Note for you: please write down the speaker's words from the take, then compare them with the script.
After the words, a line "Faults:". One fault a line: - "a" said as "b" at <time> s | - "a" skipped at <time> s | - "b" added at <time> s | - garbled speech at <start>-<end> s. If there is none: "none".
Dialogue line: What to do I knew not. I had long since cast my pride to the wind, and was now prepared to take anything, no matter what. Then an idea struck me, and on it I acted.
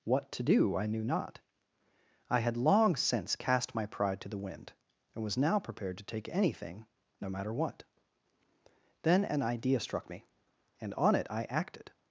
What to do I knew not. I had long since cast my pride to the wind, and was now prepared to take anything, no matter what. Then an idea struck me, and on it I acted.
Faults:
none